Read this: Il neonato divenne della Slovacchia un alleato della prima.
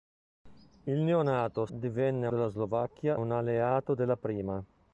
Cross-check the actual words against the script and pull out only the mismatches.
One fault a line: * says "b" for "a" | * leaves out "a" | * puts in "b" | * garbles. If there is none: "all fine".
all fine